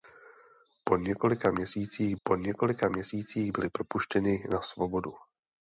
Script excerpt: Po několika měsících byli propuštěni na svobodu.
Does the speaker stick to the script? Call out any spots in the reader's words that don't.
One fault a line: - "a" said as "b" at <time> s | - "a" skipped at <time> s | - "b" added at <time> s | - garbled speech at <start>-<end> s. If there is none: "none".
- "po několika měsících" added at 2.2 s